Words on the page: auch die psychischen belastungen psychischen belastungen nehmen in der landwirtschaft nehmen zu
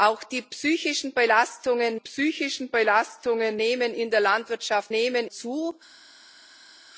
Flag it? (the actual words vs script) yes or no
no